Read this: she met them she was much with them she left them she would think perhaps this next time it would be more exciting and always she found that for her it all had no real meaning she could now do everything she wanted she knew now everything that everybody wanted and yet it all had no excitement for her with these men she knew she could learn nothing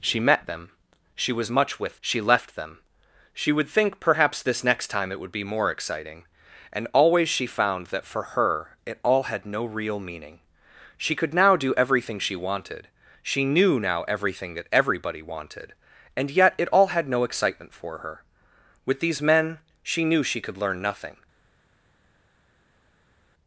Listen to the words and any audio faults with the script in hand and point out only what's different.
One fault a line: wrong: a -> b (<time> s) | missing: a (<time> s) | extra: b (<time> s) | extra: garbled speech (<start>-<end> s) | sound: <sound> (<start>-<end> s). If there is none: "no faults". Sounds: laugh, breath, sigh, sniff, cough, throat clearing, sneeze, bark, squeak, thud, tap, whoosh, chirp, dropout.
missing: them (2.0 s)